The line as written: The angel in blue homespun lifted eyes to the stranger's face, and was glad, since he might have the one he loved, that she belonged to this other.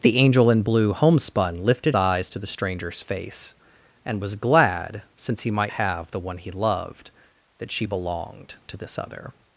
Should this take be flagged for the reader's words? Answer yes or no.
no